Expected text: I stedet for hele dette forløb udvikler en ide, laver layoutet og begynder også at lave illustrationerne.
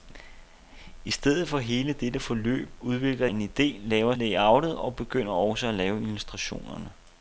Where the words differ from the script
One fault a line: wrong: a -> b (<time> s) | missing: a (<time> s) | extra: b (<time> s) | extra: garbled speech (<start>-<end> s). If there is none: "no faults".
no faults